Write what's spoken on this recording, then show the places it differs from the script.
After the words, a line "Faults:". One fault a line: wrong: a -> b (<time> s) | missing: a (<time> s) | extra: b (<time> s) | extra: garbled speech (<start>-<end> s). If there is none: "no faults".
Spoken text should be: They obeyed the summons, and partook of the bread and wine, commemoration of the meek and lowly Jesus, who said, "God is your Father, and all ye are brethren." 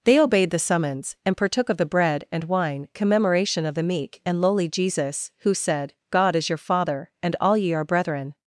They obeyed the summons, and partook of the bread and wine, commemoration of the meek and lowly Jesus, who said, "God is your Father, and all ye are brethren."
Faults:
no faults